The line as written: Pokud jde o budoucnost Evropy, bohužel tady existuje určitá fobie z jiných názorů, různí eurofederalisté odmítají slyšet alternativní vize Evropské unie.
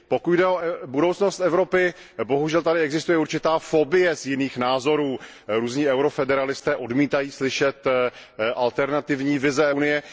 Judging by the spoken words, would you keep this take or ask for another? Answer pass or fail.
fail